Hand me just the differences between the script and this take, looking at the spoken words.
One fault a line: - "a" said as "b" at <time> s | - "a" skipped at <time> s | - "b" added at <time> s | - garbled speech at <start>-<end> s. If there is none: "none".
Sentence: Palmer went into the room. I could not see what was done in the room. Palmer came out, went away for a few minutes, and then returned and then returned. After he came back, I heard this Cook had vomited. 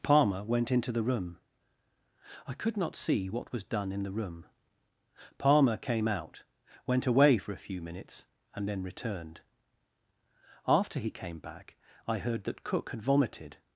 - "and then returned" skipped at 9.4 s
- "this" said as "that" at 12.4 s